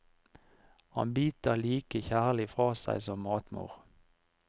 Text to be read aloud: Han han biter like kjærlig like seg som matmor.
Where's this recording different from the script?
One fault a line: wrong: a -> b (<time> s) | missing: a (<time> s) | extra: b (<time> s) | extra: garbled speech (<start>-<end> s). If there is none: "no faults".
missing: han (1.1 s)
wrong: like -> fra (2.5 s)